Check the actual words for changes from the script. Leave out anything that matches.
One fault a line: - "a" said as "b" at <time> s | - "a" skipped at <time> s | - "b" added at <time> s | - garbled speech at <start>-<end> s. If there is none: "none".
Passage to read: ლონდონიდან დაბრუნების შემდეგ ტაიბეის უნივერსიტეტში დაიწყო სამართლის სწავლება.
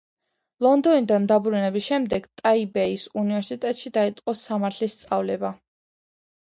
none